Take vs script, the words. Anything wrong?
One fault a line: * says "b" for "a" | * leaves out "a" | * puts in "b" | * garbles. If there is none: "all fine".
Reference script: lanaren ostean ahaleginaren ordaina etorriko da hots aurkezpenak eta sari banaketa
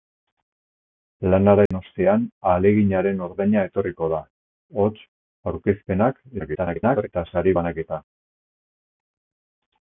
* garbles